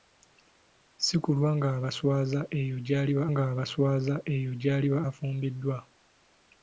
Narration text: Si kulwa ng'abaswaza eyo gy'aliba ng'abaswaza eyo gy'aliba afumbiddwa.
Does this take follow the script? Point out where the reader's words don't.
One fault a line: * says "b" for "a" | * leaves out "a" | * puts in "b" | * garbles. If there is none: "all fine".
all fine